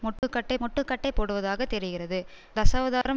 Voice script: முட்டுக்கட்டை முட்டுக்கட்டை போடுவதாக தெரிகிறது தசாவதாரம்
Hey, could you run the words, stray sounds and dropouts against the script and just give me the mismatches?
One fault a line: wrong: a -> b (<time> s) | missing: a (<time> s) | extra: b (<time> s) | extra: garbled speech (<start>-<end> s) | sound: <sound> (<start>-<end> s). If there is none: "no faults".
sound: dropout (0.2-0.2 s)
sound: dropout (3.0-3.1 s)